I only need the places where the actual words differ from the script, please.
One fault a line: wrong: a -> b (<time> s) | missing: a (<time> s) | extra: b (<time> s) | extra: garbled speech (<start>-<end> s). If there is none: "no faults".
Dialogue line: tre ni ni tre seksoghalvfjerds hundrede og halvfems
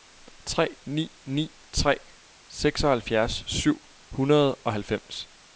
extra: syv (3.5 s)